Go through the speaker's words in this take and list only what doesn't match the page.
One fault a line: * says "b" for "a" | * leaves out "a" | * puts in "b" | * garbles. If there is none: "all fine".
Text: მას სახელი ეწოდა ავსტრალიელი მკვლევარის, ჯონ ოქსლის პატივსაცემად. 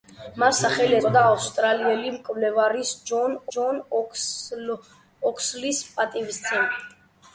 * puts in "ჯონ"